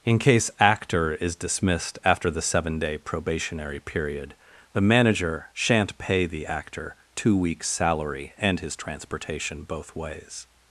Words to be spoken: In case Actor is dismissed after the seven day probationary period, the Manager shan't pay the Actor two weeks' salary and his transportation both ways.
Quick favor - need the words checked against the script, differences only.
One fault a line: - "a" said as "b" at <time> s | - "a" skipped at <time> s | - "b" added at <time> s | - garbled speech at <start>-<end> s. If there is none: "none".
none